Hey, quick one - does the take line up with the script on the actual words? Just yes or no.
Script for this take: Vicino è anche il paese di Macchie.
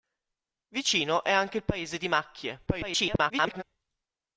no